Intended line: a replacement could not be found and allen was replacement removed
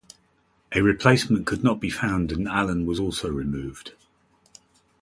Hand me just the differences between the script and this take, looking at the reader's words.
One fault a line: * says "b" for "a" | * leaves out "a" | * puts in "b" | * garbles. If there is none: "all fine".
* says "also" for "replacement"